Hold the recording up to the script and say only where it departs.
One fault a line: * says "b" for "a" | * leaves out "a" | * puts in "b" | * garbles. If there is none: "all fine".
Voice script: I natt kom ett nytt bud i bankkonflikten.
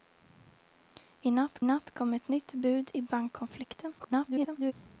* puts in "natt"
* garbles